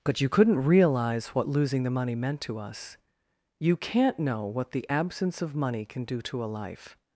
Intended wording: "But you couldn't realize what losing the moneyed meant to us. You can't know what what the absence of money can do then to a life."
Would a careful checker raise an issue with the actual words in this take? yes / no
yes